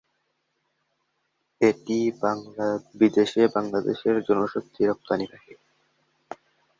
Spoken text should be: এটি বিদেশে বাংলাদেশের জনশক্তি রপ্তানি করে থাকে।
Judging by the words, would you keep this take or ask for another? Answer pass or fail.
fail